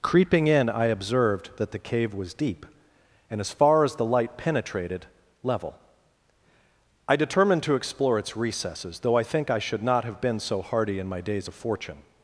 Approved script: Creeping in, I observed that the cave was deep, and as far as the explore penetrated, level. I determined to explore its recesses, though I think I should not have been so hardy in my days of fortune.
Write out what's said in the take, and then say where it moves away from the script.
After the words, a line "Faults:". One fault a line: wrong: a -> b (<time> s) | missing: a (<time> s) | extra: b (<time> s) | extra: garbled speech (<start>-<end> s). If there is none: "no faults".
Creeping in, I observed that the cave was deep, and as far as the light penetrated, level. I determined to explore its recesses, though I think I should not have been so hardy in my days of fortune.
Faults:
wrong: explore -> light (4.0 s)